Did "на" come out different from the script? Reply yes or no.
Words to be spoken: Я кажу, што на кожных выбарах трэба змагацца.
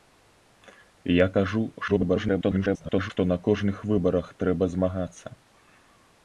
no